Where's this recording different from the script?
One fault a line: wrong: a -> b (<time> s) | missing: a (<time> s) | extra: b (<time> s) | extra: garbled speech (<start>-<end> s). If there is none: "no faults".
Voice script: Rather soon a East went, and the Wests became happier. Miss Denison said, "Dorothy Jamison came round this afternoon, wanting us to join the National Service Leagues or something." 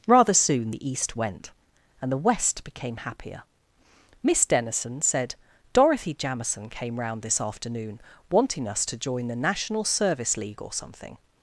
wrong: a -> the (0.7 s)
wrong: Wests -> West (2.2 s)
wrong: Leagues -> League (10.4 s)